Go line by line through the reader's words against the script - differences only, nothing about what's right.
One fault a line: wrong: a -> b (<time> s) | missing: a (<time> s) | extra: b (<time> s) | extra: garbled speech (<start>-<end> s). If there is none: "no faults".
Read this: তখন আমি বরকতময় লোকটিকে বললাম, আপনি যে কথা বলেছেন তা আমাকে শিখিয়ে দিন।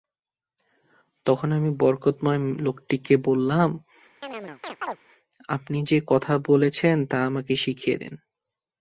no faults